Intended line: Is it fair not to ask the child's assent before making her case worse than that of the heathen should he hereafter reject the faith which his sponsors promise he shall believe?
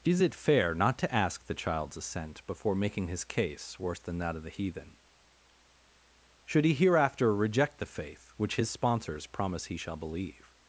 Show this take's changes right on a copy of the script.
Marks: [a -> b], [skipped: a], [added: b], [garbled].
Is it fair not to ask the child's assent before making [her -> his] case worse than that of the heathen should he hereafter reject the faith which his sponsors promise he shall believe?